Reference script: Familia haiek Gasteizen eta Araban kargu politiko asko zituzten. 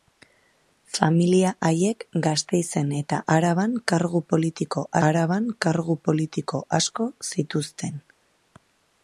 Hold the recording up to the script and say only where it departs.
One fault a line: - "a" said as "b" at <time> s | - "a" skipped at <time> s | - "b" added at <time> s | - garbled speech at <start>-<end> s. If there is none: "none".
- "Araban kargu politiko" added at 5.1 s